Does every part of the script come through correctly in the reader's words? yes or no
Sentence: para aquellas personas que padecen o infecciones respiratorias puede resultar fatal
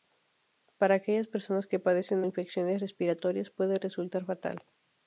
yes